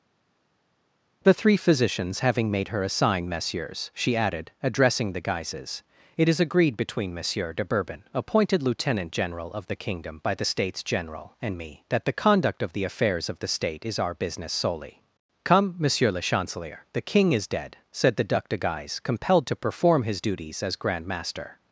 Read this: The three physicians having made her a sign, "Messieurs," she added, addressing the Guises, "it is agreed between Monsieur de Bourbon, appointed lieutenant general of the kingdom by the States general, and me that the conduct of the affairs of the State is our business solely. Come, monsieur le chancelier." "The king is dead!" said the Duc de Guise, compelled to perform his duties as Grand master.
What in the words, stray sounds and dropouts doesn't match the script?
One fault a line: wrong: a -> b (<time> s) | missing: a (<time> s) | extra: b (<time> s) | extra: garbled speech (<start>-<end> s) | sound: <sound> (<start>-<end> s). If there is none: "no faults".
no faults